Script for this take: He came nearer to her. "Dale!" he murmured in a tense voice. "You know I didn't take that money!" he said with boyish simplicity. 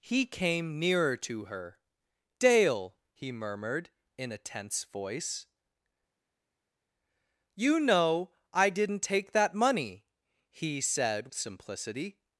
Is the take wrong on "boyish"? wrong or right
wrong